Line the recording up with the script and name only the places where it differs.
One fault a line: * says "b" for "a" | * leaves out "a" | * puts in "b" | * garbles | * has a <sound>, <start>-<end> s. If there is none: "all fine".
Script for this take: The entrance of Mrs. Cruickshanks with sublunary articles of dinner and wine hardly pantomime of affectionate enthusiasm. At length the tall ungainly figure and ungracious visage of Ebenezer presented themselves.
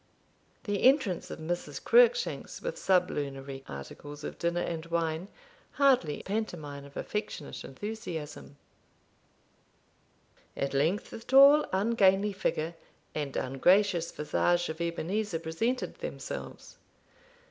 all fine